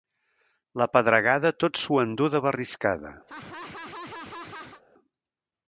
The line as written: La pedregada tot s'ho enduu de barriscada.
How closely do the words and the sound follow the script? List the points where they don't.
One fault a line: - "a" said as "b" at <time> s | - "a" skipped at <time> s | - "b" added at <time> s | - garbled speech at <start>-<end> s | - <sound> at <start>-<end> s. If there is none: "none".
- laugh at 3.3-4.8 s